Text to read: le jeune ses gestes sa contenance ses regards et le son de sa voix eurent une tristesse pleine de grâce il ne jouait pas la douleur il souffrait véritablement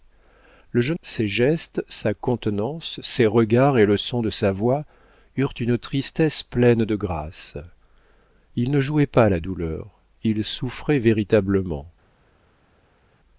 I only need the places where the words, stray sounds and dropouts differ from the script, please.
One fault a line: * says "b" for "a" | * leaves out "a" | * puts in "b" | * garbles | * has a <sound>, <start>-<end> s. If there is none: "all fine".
all fine